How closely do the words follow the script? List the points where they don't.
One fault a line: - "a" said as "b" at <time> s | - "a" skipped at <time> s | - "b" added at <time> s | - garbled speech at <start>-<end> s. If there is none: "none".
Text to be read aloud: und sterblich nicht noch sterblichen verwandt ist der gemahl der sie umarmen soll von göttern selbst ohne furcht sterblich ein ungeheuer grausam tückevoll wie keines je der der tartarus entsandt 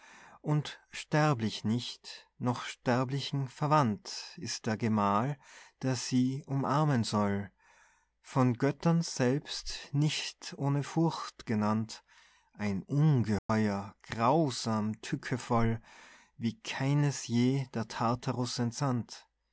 - "nicht" added at 9.9 s
- "sterblich" said as "genannt" at 11.4 s
- "der" skipped at 17.9 s